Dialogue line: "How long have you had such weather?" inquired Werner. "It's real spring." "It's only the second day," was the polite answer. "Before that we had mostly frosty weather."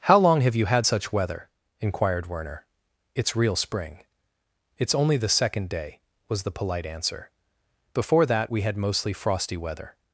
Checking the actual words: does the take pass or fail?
pass